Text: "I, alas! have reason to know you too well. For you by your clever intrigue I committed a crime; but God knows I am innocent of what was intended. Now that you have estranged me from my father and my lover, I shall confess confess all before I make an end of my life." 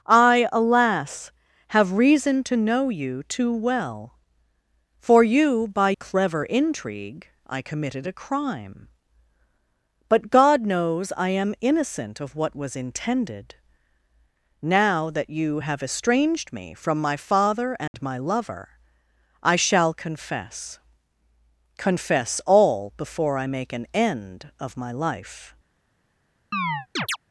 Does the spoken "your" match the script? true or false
false